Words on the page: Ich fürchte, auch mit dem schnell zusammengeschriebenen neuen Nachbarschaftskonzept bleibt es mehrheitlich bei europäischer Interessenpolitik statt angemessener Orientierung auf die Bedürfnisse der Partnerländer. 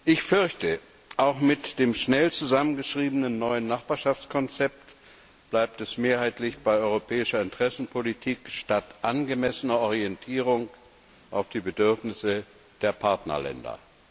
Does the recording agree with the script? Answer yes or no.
yes